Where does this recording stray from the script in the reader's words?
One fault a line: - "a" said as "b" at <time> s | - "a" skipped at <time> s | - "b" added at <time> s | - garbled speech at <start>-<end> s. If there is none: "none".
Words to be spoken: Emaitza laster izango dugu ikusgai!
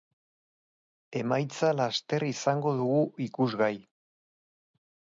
none